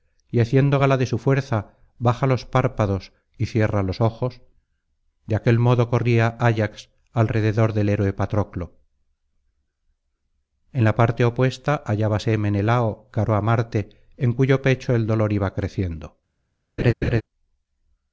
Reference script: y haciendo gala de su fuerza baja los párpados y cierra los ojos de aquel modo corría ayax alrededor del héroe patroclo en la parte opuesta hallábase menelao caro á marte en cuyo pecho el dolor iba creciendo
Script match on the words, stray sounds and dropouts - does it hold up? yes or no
no